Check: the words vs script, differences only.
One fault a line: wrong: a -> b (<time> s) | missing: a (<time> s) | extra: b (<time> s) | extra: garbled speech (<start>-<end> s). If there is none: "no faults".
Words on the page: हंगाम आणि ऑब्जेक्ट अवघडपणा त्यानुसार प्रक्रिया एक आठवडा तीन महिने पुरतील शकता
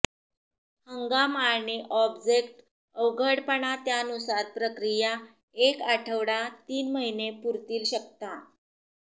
no faults